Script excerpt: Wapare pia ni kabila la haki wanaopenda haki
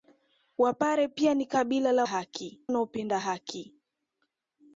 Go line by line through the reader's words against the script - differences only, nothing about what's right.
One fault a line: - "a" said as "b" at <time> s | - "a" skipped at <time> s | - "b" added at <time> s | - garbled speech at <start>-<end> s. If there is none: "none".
none